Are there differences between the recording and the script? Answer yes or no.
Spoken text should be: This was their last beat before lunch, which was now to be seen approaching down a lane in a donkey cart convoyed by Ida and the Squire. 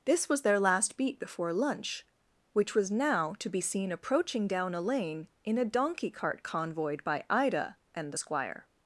no